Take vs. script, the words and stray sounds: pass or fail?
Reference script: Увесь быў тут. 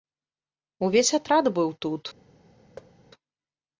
fail